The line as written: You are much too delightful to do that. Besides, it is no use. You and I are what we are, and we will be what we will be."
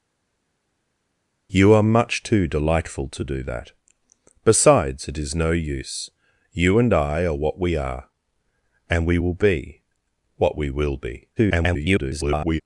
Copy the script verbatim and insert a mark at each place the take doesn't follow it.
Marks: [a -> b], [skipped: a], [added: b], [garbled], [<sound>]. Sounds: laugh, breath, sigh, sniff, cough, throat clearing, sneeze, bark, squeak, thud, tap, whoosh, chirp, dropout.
You are much too delightful to do that. Besides, it is no use. You and I are what we are, and we will be what we will be." [garbled]